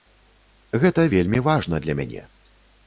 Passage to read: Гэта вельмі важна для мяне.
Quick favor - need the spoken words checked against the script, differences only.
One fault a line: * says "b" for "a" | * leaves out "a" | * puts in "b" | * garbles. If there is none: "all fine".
all fine